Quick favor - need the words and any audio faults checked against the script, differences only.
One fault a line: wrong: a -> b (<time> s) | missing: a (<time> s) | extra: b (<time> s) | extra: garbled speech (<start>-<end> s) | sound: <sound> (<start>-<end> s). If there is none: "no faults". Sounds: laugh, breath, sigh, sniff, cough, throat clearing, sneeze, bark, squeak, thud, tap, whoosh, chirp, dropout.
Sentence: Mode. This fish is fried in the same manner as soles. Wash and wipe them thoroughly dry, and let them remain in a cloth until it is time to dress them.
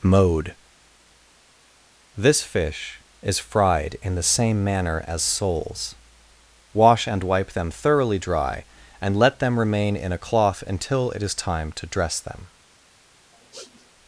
sound: sniff (13.3-13.9 s)